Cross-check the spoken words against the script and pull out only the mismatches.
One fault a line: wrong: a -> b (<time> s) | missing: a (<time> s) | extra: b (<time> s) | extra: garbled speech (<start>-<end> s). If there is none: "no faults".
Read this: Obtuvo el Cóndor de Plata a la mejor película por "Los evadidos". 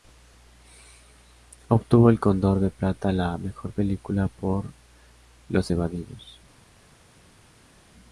no faults